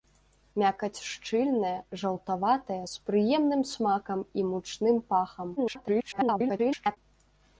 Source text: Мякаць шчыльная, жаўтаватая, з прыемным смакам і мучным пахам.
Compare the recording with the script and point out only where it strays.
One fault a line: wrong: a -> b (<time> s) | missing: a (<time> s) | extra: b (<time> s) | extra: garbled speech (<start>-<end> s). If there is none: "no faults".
extra: garbled speech (5.6-7.0 s)